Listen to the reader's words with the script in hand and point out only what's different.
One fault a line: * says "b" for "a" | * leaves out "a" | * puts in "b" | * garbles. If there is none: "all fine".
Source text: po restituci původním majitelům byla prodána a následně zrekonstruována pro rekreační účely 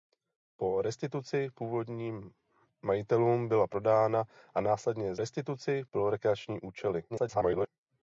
* says "restituci" for "zrekonstruována"
* garbles